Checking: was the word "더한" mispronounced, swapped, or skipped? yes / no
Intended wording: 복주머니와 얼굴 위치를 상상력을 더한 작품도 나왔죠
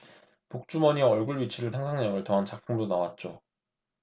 no